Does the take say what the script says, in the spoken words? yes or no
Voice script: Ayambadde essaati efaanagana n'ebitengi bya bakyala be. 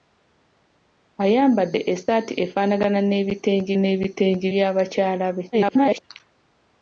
no